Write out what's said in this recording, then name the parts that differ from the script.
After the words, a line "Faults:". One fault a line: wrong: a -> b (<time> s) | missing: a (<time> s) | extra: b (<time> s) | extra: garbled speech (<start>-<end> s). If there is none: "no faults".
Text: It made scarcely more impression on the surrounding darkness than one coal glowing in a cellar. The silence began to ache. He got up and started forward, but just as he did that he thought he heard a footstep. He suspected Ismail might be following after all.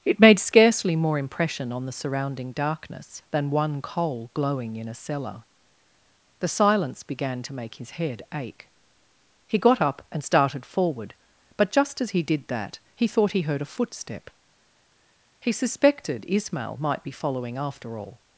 It made scarcely more impression on the surrounding darkness than one coal glowing in a cellar. The silence began to make his head ache. He got up and started forward, but just as he did that he thought he heard a footstep. He suspected Ismail might be following after all.
Faults:
extra: make his head (7.5 s)